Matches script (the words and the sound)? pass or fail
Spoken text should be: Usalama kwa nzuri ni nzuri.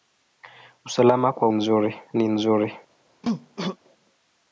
fail